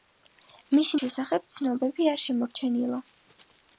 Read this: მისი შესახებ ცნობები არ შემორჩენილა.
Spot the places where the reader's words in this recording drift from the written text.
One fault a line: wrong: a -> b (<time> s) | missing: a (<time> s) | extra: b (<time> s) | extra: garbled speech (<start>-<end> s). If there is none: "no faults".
no faults